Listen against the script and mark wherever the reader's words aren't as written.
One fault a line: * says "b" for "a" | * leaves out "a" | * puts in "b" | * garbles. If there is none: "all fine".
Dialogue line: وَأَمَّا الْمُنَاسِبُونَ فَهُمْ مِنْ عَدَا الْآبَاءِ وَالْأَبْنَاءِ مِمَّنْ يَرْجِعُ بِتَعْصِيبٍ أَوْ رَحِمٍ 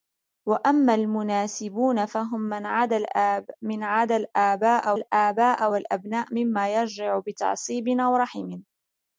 * puts in "الْآبَاءِ"